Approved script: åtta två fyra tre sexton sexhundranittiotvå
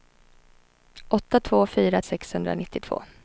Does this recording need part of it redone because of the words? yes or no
yes